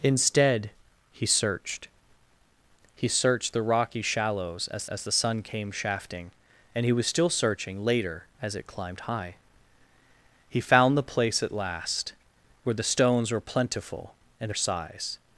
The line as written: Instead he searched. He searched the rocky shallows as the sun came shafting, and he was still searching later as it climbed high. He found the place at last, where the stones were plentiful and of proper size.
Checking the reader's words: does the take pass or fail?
fail